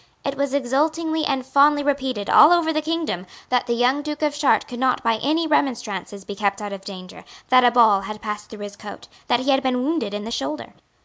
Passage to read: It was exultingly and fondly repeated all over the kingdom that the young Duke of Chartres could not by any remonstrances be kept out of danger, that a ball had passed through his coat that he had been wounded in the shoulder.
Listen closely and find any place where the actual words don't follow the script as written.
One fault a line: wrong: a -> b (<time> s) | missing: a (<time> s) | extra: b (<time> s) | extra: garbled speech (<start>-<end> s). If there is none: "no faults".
no faults